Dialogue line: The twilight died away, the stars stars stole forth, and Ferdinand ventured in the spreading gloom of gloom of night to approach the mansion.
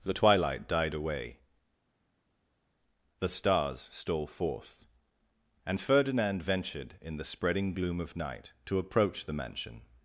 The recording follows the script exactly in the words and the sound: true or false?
false